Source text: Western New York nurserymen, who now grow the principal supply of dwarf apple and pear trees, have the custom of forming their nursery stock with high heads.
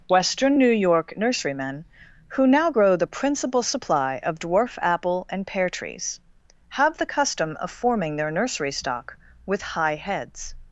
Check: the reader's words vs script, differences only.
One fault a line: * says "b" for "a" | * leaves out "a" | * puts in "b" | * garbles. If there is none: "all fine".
all fine